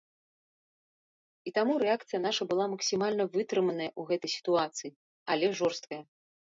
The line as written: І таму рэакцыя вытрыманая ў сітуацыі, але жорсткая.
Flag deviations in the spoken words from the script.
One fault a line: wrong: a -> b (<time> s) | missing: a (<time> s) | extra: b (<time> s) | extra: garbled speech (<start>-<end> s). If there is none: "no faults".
extra: наша была максімальна (2.3 s)
extra: гэтай (4.2 s)